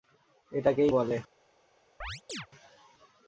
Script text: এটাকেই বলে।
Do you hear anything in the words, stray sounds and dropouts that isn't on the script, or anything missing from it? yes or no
yes